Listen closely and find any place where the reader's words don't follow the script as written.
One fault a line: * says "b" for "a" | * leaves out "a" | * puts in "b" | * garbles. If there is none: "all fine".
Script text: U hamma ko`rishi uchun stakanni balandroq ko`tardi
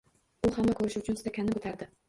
* leaves out "balandroq"